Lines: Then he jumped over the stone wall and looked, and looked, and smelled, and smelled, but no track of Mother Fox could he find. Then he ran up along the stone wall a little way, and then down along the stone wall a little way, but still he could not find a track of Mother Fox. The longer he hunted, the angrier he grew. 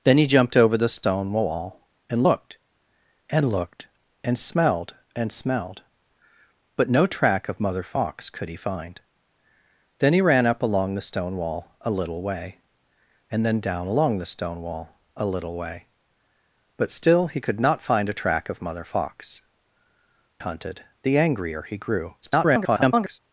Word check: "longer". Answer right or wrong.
wrong